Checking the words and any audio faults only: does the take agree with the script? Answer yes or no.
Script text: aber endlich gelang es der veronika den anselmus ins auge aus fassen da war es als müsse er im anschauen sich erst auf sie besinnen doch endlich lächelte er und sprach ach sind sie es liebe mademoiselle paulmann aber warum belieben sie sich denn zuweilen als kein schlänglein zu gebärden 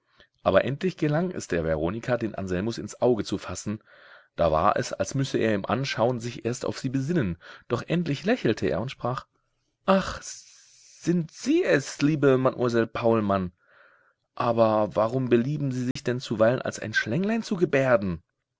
no